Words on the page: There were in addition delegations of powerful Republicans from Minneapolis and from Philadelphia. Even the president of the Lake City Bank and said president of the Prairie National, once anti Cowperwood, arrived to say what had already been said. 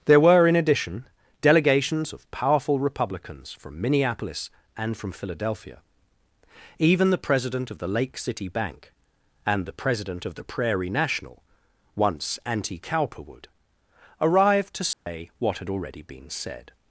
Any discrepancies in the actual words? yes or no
yes